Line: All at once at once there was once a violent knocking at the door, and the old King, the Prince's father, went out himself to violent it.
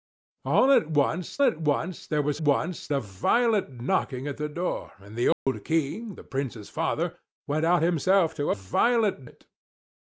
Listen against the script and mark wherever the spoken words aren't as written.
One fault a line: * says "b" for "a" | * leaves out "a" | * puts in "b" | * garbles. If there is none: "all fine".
all fine